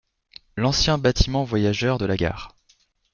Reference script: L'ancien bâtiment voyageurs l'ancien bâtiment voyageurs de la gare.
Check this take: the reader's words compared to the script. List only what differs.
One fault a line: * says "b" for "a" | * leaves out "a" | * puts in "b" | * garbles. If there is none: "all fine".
* leaves out "l'ancien bâtiment voyageurs"